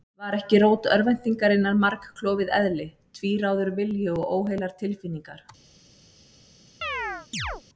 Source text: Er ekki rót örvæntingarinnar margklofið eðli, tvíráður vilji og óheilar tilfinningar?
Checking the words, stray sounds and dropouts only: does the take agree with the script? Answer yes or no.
no